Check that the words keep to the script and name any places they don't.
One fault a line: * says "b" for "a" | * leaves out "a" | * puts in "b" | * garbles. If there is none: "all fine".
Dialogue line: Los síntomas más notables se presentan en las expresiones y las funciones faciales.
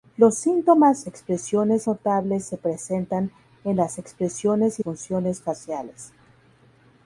* says "expresiones" for "más"
* leaves out "las"